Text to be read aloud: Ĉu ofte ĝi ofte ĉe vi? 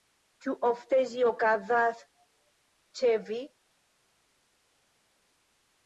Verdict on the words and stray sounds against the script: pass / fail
fail